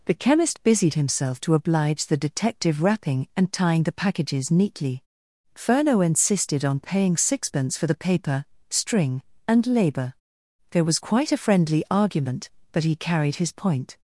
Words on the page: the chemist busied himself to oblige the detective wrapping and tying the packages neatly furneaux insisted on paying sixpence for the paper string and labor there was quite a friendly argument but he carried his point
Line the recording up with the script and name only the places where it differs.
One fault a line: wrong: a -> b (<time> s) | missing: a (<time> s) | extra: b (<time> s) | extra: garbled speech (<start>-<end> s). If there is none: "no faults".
no faults